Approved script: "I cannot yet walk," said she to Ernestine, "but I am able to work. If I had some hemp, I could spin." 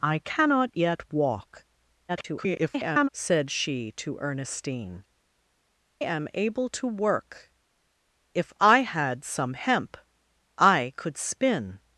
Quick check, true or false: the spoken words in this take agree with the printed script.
false